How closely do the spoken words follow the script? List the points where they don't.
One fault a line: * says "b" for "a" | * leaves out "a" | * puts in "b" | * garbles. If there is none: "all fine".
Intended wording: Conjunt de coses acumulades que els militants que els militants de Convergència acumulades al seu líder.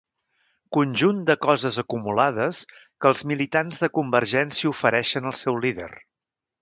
* leaves out "que els militants"
* says "ofereixen" for "acumulades"